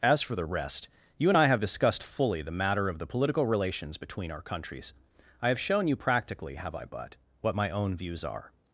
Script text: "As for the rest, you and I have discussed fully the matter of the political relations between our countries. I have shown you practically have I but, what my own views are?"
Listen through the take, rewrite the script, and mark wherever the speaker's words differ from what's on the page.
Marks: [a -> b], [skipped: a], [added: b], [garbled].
"As for the rest, you and I have discussed fully the matter of the political relations between our countries. I have shown you practically have I but, what my own views are?"